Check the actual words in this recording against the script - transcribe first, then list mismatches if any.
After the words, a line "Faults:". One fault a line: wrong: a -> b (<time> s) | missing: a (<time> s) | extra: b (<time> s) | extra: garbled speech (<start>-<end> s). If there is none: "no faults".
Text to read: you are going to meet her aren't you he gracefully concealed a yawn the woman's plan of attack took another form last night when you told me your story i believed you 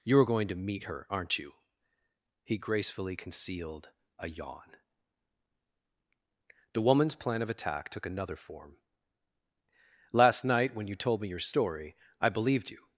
you are going to meet her aren't you he gracefully concealed a yawn the woman's plan of attack took another form last night when you told me your story i believed you
Faults:
no faults